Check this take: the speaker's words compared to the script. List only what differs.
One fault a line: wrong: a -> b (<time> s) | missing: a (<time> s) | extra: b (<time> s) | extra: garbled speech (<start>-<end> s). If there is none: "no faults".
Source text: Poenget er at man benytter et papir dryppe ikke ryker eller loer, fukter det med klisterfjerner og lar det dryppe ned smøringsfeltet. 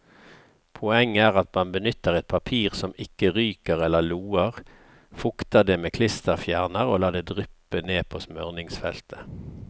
wrong: dryppe -> som (2.8 s)
extra: på (8.1 s)